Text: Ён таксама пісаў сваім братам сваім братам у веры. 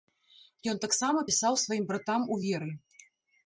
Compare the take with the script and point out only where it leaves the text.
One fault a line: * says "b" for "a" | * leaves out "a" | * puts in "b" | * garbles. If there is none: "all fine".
* leaves out "сваім братам"